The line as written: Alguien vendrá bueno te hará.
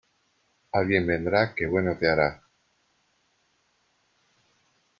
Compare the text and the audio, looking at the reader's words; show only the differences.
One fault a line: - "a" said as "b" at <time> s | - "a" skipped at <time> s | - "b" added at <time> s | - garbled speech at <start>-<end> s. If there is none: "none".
- "que" added at 1.5 s